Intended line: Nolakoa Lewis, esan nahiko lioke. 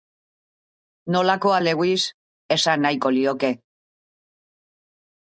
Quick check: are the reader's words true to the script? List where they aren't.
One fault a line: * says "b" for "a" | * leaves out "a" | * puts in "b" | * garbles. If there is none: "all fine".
all fine